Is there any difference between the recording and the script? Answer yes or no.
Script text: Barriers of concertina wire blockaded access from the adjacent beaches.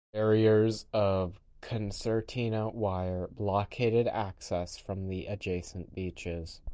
no